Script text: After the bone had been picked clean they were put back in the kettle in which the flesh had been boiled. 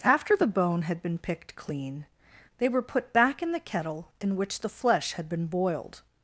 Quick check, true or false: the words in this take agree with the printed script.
true